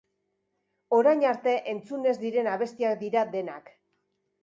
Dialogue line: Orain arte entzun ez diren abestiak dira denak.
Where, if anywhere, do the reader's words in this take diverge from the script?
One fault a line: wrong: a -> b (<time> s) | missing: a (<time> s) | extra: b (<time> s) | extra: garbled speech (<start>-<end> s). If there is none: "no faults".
no faults